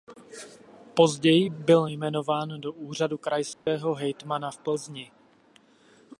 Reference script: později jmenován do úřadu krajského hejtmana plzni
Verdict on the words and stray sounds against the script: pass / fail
fail